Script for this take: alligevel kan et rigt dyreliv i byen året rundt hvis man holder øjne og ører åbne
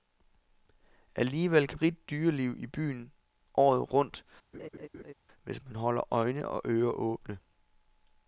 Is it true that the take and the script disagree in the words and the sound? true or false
true